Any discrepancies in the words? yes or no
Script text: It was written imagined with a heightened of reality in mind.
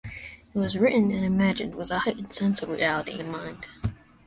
yes